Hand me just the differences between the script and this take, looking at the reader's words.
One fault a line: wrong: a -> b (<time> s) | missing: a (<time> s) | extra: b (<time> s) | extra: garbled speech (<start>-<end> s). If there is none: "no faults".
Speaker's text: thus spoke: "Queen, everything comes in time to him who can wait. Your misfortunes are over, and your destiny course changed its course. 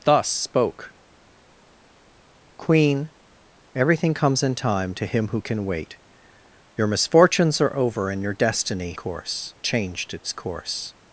no faults